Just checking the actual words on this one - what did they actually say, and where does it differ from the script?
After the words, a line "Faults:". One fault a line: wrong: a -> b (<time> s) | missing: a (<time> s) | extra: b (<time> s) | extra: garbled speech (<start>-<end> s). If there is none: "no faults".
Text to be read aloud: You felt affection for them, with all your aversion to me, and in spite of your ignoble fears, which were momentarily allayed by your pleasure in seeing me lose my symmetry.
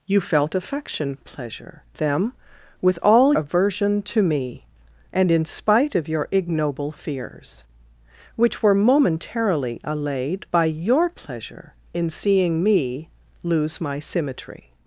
You felt affection pleasure them, with all aversion to me, and in spite of your ignoble fears, which were momentarily allayed by your pleasure in seeing me lose my symmetry.
Faults:
wrong: for -> pleasure (1.2 s)
missing: your (3.3 s)